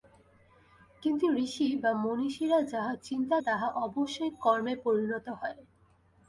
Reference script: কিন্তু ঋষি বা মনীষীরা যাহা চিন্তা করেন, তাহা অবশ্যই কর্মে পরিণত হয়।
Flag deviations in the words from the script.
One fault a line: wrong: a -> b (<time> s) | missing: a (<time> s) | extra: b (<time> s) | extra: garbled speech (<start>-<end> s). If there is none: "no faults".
missing: করেন (3.4 s)